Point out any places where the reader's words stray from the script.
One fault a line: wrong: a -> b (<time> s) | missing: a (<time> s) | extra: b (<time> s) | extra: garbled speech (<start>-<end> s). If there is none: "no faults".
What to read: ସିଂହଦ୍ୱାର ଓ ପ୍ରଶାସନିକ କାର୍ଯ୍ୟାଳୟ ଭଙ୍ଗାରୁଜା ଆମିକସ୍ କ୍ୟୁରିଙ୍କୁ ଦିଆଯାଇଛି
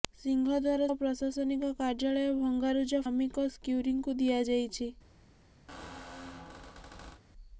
no faults